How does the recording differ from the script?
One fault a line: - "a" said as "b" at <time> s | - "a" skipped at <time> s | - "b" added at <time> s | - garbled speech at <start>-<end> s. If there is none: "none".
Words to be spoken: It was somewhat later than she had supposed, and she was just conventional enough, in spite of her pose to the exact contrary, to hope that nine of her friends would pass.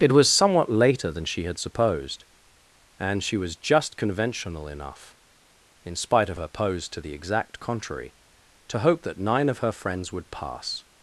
none